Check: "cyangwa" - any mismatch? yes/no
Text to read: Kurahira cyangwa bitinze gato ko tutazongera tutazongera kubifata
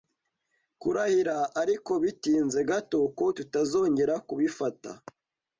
yes